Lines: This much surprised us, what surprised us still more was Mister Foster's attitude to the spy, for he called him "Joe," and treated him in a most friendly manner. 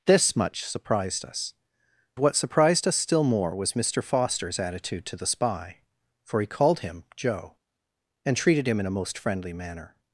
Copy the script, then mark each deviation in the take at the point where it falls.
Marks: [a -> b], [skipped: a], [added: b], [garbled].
This much surprised us, what surprised us still more was Mister Foster's attitude to the spy, for he called him "Joe," and treated him in a most friendly manner.